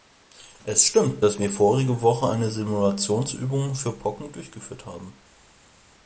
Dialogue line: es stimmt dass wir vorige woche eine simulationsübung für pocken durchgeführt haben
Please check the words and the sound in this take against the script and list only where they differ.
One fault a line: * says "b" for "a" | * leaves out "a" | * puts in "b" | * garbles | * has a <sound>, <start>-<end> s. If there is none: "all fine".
all fine